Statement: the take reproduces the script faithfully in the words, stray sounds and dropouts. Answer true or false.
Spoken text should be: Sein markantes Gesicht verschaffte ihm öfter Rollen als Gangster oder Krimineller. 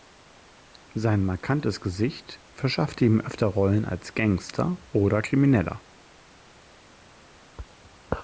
true